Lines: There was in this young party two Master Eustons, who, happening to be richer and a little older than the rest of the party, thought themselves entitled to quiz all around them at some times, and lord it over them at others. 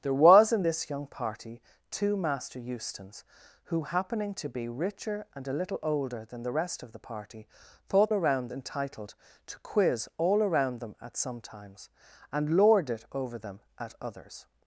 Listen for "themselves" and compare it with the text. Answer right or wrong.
wrong